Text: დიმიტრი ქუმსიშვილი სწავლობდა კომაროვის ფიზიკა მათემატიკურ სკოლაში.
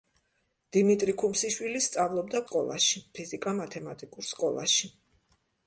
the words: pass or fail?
fail